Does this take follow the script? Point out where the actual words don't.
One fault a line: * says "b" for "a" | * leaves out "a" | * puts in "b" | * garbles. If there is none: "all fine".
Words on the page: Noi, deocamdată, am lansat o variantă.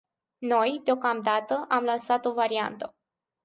all fine